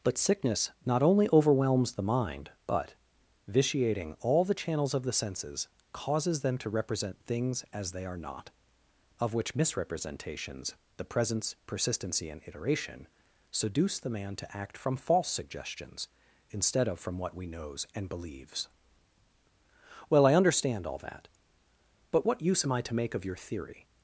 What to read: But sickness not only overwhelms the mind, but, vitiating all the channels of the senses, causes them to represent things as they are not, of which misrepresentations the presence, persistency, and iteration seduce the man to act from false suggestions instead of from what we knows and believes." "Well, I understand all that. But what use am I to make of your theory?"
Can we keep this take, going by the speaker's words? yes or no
yes